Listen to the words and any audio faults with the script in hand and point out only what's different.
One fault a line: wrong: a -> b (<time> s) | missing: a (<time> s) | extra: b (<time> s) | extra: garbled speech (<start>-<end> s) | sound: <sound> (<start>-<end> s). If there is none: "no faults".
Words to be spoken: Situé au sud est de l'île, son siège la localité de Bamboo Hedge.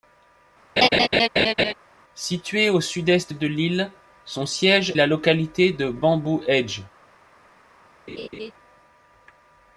sound: laugh (0.8-1.7 s)
sound: laugh (8.1-8.5 s)